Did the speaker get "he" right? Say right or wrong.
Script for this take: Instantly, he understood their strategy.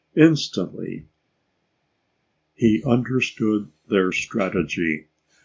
right